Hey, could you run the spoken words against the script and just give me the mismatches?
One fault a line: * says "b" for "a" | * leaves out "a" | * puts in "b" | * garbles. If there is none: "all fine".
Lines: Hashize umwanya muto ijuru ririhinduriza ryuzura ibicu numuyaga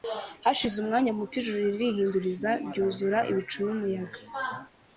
all fine